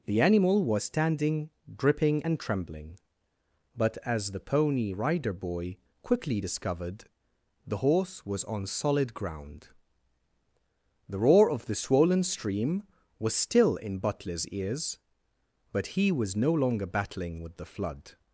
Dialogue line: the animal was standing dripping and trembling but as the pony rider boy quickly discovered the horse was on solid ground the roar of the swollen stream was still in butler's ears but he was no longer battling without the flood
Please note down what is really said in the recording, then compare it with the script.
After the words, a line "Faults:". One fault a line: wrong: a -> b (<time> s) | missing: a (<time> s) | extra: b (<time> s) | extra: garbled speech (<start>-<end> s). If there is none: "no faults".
the animal was standing dripping and trembling but as the pony rider boy quickly discovered the horse was on solid ground the roar of the swollen stream was still in butler's ears but he was no longer battling with the flood
Faults:
wrong: without -> with (17.4 s)